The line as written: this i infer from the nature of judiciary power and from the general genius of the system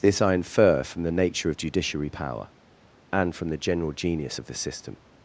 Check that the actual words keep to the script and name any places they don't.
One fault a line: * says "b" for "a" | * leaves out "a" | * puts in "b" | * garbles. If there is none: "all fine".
all fine